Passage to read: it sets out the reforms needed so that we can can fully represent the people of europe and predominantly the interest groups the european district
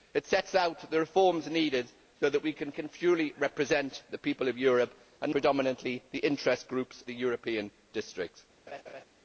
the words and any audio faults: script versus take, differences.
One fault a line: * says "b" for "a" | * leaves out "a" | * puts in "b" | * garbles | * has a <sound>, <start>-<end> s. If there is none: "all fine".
* has a laugh, 8.7-9.0 s